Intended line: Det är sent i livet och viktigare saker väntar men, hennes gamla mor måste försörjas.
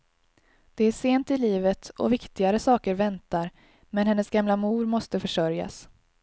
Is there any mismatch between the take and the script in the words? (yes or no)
no